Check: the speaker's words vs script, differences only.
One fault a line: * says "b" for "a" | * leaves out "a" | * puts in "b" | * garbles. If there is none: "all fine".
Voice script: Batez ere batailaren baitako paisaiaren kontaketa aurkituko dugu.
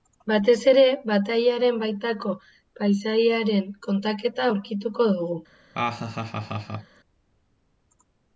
all fine